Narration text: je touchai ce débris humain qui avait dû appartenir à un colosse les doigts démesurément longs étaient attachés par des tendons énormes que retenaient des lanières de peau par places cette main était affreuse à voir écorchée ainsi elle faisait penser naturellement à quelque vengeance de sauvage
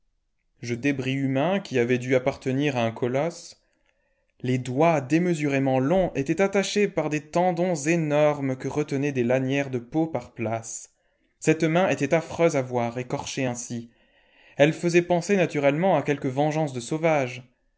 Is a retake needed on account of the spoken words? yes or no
yes